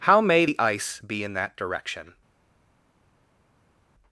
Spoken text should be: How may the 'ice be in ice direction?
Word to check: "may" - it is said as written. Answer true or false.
true